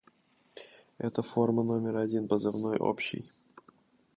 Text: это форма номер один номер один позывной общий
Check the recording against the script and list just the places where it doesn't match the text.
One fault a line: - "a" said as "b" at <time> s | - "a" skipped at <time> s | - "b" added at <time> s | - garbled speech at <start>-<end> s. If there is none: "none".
- "номер один" skipped at 2.3 s